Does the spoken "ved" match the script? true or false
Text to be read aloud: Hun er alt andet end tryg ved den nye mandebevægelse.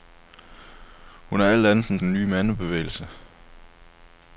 false